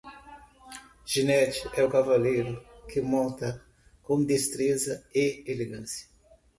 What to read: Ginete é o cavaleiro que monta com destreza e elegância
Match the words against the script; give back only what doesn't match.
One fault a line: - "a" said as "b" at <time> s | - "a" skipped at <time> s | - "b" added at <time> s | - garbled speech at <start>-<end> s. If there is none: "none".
none